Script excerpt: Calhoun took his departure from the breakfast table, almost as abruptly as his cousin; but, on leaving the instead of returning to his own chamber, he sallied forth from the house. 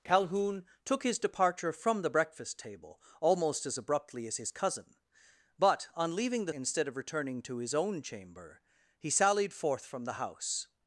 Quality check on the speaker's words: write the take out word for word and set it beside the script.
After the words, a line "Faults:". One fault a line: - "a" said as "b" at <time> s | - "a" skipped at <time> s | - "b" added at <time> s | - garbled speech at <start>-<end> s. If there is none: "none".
Calhoun took his departure from the breakfast table, almost as abruptly as his cousin; but, on leaving the instead of returning to his own chamber, he sallied forth from the house.
Faults:
none